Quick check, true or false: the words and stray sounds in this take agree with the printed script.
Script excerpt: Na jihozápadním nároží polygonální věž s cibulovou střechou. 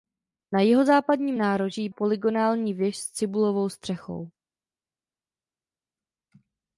true